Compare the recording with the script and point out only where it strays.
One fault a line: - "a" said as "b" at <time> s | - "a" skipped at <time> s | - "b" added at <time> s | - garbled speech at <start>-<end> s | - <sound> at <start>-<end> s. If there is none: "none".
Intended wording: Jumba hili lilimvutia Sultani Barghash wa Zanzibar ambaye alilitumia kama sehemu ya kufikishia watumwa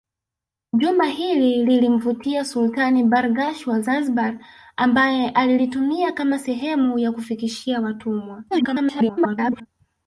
- garbled speech at 8.5-9.7 s